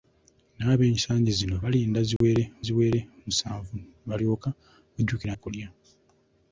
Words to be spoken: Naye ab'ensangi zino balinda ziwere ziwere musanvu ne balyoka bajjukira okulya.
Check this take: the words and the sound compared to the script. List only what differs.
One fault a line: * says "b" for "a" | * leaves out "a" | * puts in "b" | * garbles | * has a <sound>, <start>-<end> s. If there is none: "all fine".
* has a dropout, 2.2-2.2 s